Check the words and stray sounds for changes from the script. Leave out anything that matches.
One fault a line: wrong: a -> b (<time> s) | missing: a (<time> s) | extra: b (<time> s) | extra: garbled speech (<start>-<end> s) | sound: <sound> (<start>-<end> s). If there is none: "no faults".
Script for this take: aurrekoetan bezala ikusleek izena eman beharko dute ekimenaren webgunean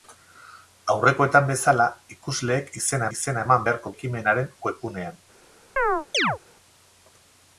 extra: izena (3.2 s)
missing: dute (3.9 s)
sound: chirp (5.8-6.4 s)